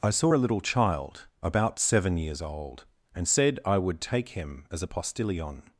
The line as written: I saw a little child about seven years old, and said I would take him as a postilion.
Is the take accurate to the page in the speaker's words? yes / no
yes